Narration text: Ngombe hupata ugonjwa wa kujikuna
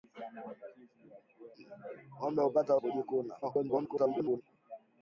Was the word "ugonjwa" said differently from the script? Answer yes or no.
yes